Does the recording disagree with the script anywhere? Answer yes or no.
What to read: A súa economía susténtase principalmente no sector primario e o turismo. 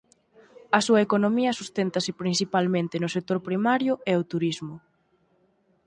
no